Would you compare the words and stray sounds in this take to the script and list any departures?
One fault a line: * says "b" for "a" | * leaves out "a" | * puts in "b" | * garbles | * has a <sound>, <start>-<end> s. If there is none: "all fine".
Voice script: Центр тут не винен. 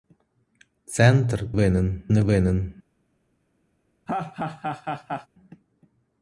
* says "винен" for "тут"
* has a laugh, 4.1-5.3 s